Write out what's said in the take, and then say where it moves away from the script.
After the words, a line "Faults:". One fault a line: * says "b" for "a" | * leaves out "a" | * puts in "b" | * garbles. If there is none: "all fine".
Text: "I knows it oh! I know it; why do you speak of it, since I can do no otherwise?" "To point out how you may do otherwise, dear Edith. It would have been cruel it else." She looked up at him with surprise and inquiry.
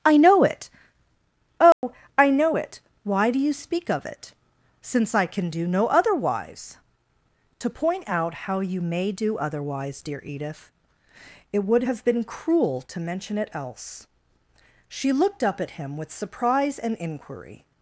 "I know it oh! I know it; why do you speak of it, since I can do no otherwise?" "To point out how you may do otherwise, dear Edith. It would have been cruel to mention it else." She looked up at him with surprise and inquiry.
Faults:
* says "know" for "knows"
* puts in "to mention"